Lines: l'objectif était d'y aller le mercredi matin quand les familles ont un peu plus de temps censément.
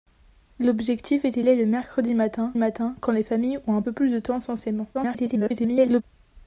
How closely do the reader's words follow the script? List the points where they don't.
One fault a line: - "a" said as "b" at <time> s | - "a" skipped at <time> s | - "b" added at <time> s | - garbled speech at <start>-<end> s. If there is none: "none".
- "d'y" skipped at 1.4 s
- "matin" added at 2.6 s
- garbled speech at 4.9-6.0 s